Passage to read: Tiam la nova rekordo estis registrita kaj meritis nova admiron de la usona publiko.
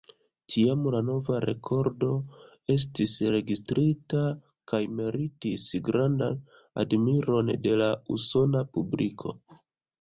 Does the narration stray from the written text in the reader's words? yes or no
yes